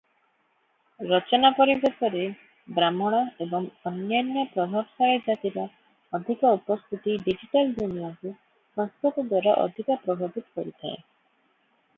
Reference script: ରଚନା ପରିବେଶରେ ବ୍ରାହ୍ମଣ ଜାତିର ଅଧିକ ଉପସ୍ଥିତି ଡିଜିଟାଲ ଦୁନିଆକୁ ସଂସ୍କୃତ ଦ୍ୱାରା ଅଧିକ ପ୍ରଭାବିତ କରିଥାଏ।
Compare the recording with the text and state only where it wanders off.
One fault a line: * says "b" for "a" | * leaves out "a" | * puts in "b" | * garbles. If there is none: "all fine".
* puts in "ଏବଂ ଅନ୍ୟାନ୍ୟ ପ୍ରଭାବଶାଳୀ"